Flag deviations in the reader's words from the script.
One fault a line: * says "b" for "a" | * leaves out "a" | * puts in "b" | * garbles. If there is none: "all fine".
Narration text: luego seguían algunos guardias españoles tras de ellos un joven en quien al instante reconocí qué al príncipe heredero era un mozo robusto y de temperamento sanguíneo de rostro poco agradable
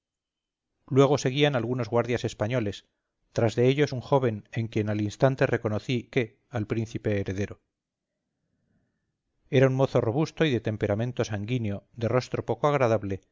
all fine